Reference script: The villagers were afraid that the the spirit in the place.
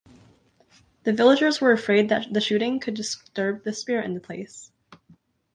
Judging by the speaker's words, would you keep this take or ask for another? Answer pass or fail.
fail